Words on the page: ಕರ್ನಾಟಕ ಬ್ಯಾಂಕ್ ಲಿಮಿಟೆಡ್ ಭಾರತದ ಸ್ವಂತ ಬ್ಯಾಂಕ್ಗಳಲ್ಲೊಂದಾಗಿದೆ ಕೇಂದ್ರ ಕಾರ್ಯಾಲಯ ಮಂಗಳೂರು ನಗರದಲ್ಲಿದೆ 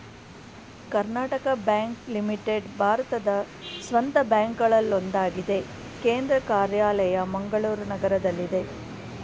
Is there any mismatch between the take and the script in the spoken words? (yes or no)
no